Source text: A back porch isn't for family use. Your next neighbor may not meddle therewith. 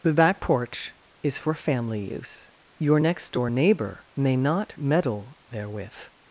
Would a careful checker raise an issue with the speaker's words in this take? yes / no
yes